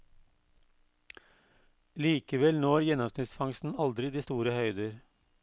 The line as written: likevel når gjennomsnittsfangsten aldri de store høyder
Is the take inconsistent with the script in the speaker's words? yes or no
no